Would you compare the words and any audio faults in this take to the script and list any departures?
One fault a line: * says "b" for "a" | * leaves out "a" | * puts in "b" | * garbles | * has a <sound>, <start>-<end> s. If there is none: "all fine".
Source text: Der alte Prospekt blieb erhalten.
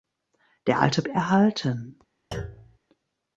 * leaves out "Prospekt blieb"
* has a thud, 2.3-2.8 s